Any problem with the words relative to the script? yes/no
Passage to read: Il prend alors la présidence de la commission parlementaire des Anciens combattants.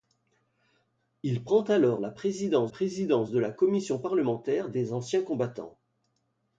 yes